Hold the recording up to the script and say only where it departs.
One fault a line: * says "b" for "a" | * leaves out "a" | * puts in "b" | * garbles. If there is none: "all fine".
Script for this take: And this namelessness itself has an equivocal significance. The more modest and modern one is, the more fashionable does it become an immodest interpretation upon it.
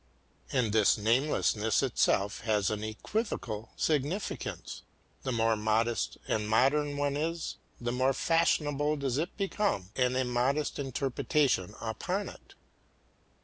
all fine